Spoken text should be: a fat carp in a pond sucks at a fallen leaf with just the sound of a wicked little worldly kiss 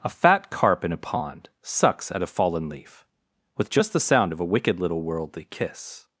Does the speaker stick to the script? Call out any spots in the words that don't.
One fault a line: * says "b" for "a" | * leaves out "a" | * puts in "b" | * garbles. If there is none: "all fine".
all fine